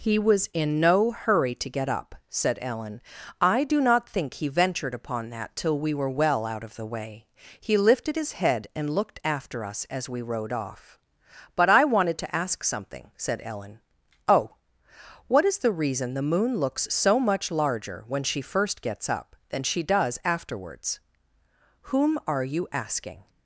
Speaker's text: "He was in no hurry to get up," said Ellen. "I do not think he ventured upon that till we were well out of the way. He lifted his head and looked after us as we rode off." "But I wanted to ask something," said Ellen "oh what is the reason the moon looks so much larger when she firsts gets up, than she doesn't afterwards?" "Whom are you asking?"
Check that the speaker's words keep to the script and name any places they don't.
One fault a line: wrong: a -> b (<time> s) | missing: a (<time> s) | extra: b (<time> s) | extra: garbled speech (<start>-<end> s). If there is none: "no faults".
wrong: firsts -> first (18.4 s)
wrong: doesn't -> does (19.8 s)